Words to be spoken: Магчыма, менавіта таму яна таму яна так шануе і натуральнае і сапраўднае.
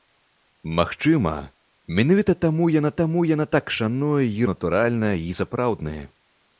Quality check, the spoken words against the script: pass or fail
pass